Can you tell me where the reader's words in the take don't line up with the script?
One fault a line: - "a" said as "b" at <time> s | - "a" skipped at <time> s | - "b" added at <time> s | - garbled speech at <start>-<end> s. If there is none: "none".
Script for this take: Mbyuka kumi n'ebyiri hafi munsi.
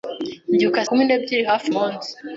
none